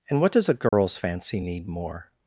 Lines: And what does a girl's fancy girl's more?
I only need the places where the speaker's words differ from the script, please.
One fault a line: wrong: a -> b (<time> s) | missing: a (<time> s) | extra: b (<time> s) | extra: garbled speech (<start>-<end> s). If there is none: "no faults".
wrong: girl's -> need (1.4 s)